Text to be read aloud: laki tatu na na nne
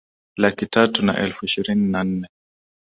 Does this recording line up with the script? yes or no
no